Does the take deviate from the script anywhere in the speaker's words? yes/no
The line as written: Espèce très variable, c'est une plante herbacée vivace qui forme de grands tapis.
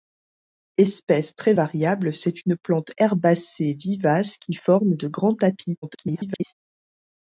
yes